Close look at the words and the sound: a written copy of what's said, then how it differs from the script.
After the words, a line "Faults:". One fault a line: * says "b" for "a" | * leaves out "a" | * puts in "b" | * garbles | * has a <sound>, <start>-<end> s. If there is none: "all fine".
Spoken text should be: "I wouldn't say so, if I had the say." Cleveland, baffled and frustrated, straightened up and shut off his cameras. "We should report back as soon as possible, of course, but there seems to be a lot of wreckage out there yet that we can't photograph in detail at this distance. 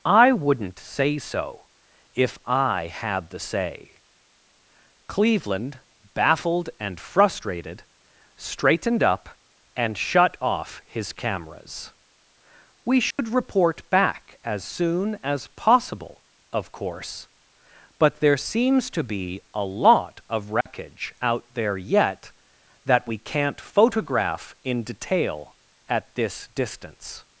"I wouldn't say so, if I had the say." Cleveland, baffled and frustrated, straightened up and shut off his cameras. "We should report back as soon as possible, of course, but there seems to be a lot of wreckage out there yet that we can't photograph in detail at this distance.
Faults:
* has a dropout, 13.1-13.2 s
* has a dropout, 20.6-20.7 s